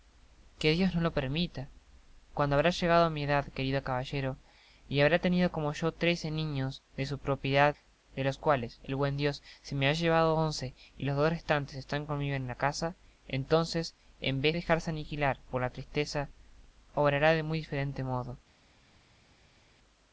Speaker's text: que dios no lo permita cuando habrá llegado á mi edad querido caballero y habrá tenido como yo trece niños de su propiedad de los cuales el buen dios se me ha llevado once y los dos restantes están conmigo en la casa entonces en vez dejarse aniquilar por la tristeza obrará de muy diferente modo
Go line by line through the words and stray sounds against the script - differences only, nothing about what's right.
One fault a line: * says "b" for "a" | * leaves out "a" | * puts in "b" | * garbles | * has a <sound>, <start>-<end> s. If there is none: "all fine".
all fine